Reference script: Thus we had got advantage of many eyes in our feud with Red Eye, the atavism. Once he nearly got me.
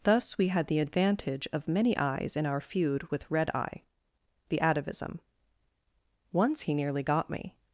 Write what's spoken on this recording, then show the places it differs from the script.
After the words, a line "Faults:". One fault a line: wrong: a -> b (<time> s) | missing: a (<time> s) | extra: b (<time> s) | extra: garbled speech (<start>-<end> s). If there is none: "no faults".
Thus we had the advantage of many eyes in our feud with Red Eye, the atavism. Once he nearly got me.
Faults:
wrong: got -> the (0.7 s)